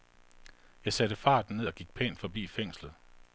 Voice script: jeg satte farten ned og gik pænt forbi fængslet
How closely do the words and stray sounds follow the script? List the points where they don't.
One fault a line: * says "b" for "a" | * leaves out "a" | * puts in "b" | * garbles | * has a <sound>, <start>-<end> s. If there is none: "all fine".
all fine